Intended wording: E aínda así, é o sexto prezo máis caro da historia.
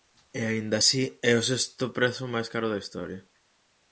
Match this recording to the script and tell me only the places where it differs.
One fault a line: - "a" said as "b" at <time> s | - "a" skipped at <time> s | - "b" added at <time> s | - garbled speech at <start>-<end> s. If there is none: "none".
none